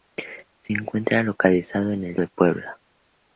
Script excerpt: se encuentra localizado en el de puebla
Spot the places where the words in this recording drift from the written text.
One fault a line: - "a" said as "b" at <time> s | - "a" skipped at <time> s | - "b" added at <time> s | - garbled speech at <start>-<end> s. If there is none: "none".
none